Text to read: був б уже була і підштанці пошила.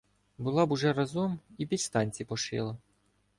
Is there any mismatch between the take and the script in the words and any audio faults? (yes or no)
yes